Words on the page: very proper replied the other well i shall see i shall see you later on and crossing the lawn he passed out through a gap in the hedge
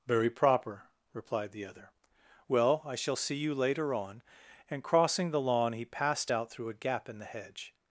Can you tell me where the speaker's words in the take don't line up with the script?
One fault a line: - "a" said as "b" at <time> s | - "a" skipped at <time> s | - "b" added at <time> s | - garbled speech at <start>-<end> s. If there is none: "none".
- "i shall see" skipped at 3.3 s